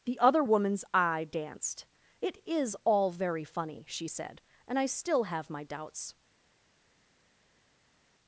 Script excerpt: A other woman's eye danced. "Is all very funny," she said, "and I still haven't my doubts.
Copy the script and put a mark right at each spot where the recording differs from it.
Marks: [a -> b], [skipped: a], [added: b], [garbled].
[A -> The] other woman's eye danced. [added: It] "Is all very funny," she said, "and I still [haven't -> have] my doubts.